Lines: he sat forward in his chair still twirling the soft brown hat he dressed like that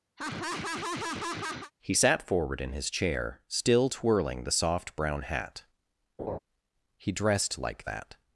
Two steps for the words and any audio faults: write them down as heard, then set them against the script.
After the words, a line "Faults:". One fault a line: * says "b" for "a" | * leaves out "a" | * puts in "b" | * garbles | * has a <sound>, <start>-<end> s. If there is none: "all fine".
he sat forward in his chair still twirling the soft brown hat he dressed like that
Faults:
* has a laugh, 0.2-1.7 s
* has a laugh, 6.2-6.4 s